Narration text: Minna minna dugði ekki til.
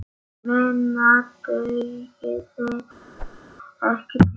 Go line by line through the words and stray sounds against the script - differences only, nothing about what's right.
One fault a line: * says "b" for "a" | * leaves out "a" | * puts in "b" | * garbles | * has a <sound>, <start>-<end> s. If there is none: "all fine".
* leaves out "minna"
* has a whoosh, 3.2-3.4 s